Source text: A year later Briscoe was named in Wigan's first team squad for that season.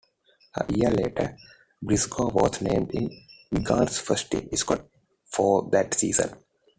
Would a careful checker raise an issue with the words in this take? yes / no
no